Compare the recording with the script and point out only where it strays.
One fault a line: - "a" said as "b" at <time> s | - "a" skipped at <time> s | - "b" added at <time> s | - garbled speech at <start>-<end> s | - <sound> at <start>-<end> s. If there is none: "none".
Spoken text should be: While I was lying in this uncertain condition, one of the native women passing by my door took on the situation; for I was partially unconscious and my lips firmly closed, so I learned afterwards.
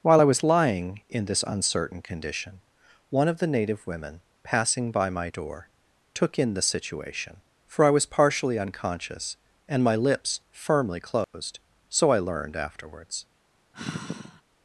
- "on" said as "in" at 6.4 s
- dropout at 11.2-11.3 s
- sigh at 13.7-14.4 s